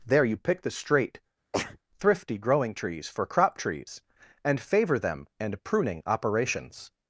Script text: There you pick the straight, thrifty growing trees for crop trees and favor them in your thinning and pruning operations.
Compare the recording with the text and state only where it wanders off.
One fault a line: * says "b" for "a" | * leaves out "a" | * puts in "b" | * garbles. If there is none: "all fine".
* leaves out "in your thinning"